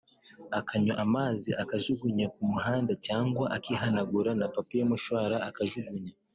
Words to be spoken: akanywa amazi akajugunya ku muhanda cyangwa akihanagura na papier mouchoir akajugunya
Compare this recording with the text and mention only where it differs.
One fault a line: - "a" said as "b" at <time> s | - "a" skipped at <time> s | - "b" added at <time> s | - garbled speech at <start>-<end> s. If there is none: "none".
none